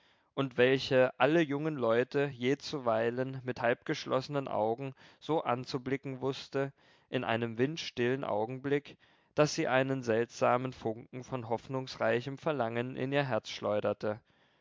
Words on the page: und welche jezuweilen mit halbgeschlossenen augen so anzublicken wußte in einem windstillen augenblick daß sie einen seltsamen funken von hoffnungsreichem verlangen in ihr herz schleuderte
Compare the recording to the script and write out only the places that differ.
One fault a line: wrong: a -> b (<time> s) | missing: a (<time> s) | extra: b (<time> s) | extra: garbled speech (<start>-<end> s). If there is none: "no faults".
extra: alle jungen leute (1.2 s)